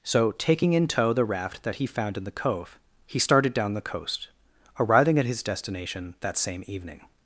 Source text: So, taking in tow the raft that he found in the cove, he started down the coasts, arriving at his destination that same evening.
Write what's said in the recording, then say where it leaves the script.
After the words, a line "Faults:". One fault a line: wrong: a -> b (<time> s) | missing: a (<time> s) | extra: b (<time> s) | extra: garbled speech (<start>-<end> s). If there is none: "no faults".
So, taking in tow the raft that he found in the cove, he started down the coast, arriving at his destination that same evening.
Faults:
wrong: coasts -> coast (3.8 s)